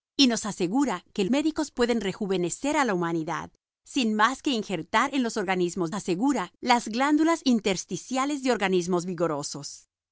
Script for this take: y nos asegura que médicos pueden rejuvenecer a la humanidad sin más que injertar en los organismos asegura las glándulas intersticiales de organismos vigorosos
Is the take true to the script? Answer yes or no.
yes